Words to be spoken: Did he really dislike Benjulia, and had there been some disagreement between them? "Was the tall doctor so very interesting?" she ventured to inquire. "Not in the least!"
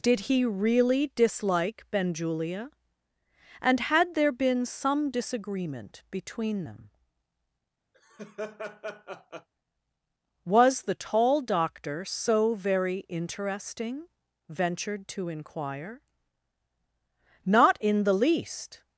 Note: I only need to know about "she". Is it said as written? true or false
false